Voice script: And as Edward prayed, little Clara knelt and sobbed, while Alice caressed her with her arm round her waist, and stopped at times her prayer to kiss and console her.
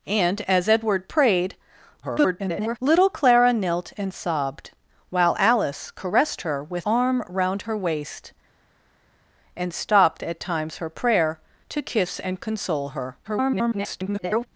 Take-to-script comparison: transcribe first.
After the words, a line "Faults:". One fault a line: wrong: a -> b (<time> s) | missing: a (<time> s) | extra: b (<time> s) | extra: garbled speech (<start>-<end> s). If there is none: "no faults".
And as Edward prayed, [garbled] little Clara knelt and sobbed, while Alice caressed her with arm round her waist, and stopped at times her prayer to kiss and console her. [garbled]
Faults:
extra: garbled speech (2.0-2.8 s)
missing: her (6.9 s)
extra: garbled speech (13.2-14.5 s)